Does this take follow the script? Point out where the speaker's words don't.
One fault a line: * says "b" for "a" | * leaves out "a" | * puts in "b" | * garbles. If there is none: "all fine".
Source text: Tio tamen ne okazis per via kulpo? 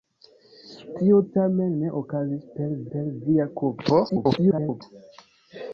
* puts in "per"
* garbles